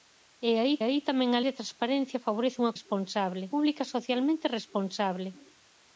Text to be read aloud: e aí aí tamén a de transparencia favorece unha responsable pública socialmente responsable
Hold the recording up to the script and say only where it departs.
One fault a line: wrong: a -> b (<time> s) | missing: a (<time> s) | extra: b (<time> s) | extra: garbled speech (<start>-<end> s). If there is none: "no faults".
no faults